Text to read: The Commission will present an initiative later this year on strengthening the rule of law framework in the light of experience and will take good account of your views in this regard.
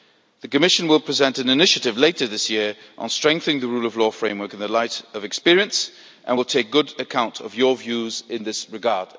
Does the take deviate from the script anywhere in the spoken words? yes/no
no